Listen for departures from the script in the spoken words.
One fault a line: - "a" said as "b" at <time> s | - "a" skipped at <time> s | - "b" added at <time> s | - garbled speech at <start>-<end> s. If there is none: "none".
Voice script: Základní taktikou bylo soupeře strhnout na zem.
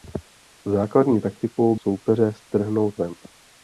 - "bylo" skipped at 1.8 s
- "na" skipped at 3.0 s